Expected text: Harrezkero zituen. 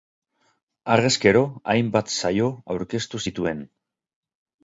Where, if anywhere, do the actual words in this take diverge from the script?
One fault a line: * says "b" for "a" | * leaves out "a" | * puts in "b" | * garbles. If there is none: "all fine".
* puts in "hainbat saio aurkeztu"